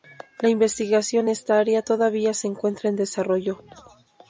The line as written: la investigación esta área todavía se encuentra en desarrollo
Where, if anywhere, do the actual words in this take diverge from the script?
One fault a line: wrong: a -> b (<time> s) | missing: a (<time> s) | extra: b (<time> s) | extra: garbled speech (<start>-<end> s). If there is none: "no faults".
no faults